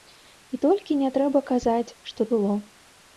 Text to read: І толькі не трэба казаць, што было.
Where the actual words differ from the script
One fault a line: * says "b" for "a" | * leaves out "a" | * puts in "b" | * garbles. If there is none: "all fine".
all fine